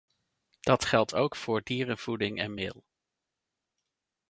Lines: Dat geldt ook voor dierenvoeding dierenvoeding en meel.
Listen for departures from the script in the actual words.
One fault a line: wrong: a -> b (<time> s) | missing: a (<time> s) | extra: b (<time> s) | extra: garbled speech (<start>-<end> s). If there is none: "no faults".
missing: dierenvoeding (2.4 s)